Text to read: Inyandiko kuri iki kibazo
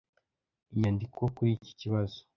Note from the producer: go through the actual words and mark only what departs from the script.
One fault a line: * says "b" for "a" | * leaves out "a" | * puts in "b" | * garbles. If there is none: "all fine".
all fine